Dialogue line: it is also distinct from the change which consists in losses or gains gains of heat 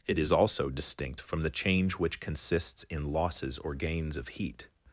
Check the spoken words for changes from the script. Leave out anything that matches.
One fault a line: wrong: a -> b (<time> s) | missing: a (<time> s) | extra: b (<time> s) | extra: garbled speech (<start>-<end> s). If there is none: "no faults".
missing: gains (4.2 s)